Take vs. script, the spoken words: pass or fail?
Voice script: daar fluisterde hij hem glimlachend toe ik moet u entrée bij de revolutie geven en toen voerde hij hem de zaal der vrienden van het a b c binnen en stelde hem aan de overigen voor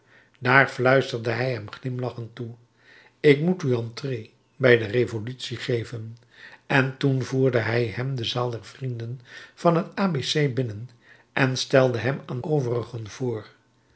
fail